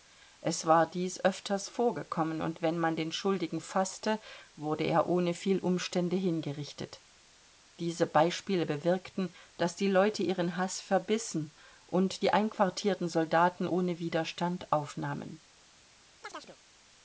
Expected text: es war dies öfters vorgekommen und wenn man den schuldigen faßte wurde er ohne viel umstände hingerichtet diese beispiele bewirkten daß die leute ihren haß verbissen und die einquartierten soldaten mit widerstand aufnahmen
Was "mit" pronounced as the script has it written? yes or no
no